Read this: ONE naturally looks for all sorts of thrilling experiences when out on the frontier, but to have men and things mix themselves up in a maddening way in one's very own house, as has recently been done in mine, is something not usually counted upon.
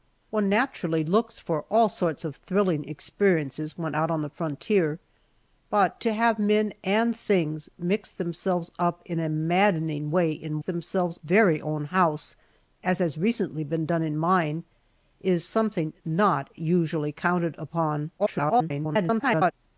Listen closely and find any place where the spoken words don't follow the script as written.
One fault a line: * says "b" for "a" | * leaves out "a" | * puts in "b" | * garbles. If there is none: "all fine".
* says "themselves" for "one's"
* garbles